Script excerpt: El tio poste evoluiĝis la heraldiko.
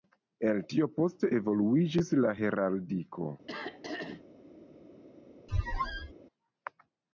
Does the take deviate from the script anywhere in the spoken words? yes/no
no